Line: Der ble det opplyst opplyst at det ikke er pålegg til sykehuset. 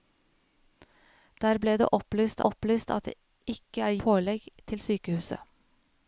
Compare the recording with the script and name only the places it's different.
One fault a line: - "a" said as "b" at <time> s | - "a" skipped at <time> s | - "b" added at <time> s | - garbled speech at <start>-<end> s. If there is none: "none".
none